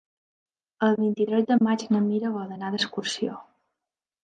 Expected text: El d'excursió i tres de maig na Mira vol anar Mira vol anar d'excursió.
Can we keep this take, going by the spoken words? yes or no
no